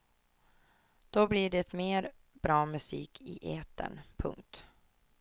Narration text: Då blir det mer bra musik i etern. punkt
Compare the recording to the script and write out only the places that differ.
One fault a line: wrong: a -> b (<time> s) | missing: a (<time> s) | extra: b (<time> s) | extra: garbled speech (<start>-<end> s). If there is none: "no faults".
no faults